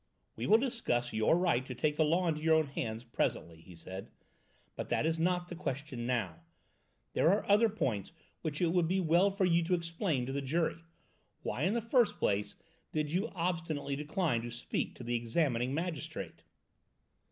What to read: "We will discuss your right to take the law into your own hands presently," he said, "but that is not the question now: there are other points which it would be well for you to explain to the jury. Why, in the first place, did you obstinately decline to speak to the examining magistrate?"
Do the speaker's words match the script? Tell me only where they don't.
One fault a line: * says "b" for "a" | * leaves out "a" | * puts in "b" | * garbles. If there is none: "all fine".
all fine